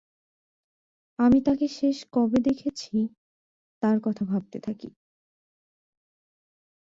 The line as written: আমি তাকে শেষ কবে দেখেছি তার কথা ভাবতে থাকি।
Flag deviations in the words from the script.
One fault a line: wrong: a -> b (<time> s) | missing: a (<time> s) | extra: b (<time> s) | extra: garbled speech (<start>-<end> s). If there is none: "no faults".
no faults